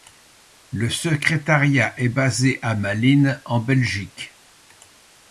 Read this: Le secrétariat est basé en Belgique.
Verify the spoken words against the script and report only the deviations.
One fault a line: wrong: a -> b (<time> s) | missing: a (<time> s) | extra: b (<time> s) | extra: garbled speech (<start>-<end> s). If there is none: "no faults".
extra: à Malines (2.6 s)